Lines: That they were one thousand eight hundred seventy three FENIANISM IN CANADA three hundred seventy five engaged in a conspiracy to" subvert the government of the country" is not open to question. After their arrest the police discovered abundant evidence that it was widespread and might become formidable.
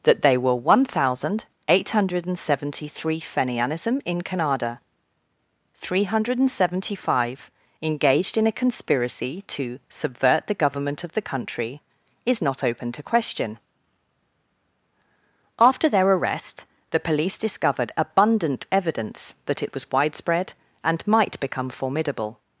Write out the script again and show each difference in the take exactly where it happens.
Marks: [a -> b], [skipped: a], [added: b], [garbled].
That they were one thousand eight hundred seventy three FENIANISM IN CANADA three hundred seventy five engaged in a conspiracy to" subvert the government of the country" is not open to question. After their arrest the police discovered abundant evidence that it was widespread and might become formidable.